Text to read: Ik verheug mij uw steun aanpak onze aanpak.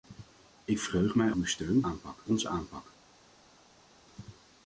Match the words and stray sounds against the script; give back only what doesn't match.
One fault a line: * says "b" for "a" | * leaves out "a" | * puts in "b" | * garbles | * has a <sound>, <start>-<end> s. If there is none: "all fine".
all fine